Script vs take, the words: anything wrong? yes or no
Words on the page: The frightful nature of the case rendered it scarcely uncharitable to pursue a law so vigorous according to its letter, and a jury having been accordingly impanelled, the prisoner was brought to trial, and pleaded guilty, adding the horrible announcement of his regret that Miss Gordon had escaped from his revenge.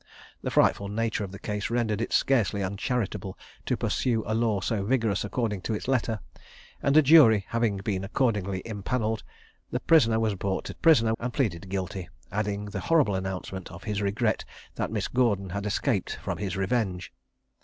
yes